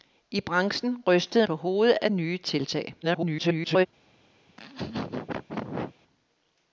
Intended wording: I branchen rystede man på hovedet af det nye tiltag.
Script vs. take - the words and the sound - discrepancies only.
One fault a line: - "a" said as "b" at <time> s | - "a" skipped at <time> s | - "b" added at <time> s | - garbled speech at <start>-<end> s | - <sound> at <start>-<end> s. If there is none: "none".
- "man" skipped at 1.5 s
- "det" skipped at 2.1 s
- garbled speech at 3.0-3.9 s
- laugh at 4.5-6.0 s